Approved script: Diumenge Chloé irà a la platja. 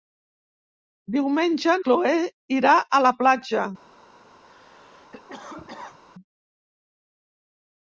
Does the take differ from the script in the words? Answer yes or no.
no